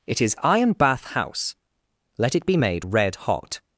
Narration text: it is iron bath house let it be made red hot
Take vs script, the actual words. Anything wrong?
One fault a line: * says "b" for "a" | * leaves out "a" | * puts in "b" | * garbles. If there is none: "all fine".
all fine